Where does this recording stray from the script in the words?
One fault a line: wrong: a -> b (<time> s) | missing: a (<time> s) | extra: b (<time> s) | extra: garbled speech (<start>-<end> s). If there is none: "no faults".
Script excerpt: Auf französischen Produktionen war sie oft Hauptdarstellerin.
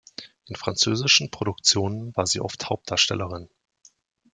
wrong: Auf -> In (0.5 s)